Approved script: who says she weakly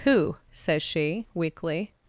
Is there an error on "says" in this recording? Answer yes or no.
no